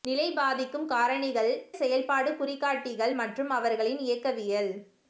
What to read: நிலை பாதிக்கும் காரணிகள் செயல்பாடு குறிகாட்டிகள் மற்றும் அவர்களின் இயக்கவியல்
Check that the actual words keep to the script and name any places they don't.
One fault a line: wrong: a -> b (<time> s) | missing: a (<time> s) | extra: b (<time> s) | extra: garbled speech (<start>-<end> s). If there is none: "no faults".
no faults